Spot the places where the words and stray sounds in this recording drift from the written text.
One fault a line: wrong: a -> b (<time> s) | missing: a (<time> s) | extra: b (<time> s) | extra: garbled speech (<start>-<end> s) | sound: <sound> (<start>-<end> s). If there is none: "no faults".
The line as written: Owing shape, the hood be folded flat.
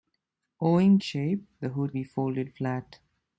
no faults